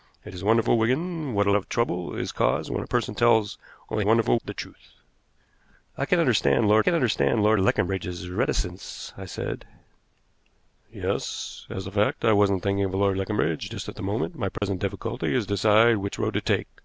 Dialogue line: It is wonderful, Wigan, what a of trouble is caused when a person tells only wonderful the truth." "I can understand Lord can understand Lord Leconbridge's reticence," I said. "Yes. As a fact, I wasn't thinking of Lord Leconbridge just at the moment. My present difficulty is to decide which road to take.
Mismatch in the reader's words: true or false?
false